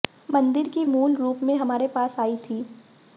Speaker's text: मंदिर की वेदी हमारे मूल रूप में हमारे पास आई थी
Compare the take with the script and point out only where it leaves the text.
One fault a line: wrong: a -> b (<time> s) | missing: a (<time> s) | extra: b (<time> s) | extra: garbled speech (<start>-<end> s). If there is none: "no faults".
missing: वेदी हमारे (0.8 s)